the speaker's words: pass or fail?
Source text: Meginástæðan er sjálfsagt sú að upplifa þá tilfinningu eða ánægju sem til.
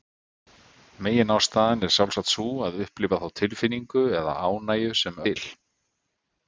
pass